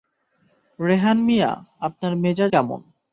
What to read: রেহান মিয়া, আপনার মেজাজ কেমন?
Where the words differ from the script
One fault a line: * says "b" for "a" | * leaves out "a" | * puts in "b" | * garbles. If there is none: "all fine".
all fine